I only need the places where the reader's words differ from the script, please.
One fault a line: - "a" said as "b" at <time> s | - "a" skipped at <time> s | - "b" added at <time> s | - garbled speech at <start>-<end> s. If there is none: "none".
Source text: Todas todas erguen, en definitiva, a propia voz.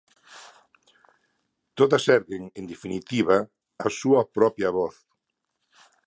- "todas" skipped at 2.0 s
- "súa" added at 4.0 s